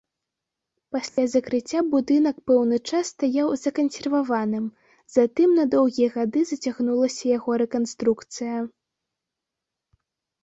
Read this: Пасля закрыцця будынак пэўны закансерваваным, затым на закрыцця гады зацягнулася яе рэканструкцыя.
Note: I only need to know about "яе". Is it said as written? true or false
false